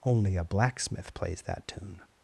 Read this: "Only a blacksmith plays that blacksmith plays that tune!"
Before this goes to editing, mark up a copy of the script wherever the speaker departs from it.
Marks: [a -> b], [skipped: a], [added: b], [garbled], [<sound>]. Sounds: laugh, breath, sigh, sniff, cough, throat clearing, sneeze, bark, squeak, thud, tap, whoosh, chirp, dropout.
"Only a blacksmith plays that [skipped: blacksmith plays that] tune!"